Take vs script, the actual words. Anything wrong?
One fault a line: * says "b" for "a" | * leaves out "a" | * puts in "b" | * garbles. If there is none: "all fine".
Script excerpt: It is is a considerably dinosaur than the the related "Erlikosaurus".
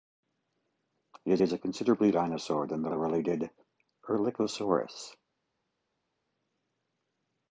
all fine